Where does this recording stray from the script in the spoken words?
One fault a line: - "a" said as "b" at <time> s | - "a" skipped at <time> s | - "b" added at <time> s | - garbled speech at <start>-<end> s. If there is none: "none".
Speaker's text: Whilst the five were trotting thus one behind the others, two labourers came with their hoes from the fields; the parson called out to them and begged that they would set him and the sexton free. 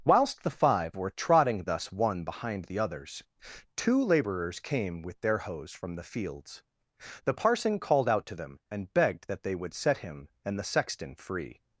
none